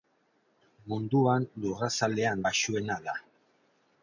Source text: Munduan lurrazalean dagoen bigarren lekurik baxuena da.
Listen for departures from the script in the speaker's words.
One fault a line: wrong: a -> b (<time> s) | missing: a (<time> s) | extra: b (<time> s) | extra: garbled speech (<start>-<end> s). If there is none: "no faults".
missing: dagoen bigarren lekurik (2.4 s)